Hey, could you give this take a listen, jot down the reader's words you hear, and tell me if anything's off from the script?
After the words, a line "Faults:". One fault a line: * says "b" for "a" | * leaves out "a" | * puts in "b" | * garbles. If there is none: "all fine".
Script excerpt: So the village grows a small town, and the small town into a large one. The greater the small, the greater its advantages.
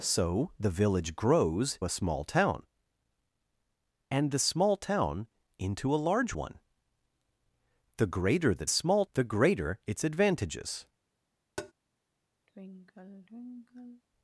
So the village grows a small town, and the small town into a large one. The greater the small, the greater its advantages.
Faults:
all fine